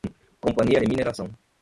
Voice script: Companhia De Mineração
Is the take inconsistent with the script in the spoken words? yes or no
no